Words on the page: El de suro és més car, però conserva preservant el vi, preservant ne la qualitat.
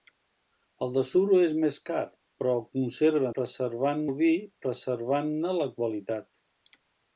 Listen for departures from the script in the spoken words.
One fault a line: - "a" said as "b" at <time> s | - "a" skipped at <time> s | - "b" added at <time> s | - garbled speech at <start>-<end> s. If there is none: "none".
none